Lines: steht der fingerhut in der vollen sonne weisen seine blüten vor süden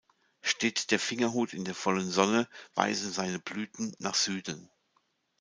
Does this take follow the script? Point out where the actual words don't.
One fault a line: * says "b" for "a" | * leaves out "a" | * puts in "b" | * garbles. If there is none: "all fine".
* says "nach" for "vor"